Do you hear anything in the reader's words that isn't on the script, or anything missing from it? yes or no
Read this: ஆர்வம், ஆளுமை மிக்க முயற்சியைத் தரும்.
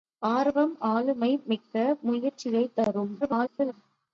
yes